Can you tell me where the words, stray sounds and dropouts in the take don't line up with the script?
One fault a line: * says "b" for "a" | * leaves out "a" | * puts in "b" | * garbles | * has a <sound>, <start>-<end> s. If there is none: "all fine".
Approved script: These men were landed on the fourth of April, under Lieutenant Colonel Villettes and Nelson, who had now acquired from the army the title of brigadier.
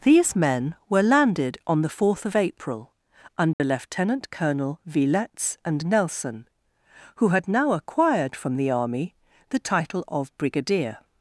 * has a dropout, 3.5-3.6 s